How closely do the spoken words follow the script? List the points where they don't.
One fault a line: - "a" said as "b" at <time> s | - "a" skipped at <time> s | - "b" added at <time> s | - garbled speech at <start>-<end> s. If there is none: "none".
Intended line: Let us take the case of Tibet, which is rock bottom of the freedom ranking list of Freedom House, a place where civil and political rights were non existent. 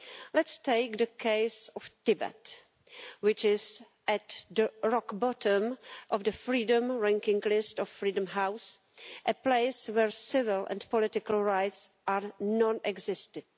- "at the" added at 4.1 s
- "were" said as "are" at 12.1 s